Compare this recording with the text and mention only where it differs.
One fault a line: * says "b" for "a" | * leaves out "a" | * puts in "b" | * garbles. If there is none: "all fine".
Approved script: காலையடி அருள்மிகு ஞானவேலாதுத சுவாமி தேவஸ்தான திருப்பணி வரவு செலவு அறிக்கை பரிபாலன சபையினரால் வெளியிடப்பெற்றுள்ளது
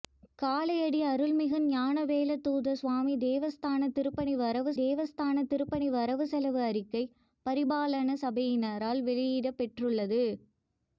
* puts in "தேவஸ்தான திருப்பணி வரவு"